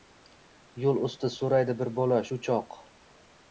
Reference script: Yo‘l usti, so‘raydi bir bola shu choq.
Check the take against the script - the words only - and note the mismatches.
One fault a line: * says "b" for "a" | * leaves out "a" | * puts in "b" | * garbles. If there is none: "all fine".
all fine